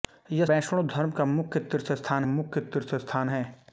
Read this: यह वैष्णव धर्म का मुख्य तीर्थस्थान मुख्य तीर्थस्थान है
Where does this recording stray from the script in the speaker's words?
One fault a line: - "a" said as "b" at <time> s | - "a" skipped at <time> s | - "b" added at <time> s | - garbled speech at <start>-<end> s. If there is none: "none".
none